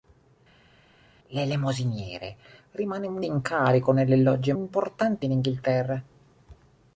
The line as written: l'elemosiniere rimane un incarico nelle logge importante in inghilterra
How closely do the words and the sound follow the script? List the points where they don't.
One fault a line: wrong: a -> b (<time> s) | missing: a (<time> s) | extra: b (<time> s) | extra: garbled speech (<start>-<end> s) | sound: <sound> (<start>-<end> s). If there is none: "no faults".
no faults